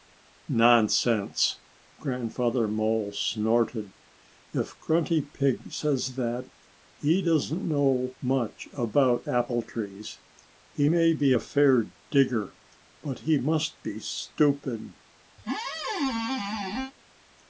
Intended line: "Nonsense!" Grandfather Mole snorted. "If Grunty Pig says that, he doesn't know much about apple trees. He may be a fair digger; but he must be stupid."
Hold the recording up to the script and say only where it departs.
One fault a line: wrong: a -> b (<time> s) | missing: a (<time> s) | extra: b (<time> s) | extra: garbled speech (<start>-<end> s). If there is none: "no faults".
no faults